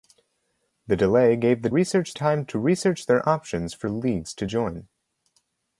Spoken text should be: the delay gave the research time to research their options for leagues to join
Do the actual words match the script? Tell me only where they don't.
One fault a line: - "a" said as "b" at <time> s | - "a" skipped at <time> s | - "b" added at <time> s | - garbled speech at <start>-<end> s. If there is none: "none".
none